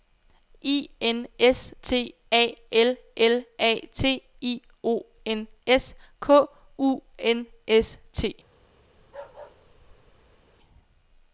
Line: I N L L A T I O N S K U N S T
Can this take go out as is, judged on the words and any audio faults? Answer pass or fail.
fail